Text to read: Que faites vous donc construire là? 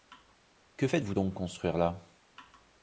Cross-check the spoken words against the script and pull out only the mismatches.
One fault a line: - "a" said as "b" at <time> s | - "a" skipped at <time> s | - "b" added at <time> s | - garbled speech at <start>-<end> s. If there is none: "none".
none